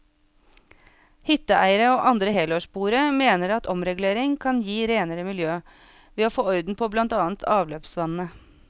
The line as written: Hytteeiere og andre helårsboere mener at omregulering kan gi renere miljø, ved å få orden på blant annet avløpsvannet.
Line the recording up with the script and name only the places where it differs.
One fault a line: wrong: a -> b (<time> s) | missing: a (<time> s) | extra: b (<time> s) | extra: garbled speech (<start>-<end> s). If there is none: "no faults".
no faults